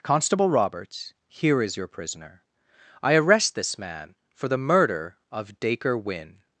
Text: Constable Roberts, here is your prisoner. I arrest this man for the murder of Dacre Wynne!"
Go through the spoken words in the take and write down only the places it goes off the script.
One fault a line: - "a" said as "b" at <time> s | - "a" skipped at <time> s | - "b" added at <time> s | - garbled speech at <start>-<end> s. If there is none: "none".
none